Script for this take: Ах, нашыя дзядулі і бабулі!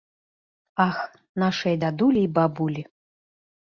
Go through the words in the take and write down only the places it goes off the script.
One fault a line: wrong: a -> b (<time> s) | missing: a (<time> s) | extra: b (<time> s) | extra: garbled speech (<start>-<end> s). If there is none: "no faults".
no faults